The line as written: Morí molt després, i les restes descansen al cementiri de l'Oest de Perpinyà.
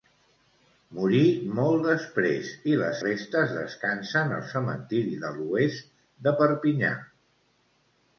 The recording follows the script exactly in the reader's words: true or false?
true